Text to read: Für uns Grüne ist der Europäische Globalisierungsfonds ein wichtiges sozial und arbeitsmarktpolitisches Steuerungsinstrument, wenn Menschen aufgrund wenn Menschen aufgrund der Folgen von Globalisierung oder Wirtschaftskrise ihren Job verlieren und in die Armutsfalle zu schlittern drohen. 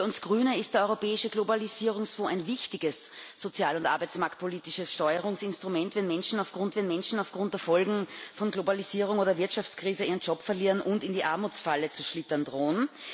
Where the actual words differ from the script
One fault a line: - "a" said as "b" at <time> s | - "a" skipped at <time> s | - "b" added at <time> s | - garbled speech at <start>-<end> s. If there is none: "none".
none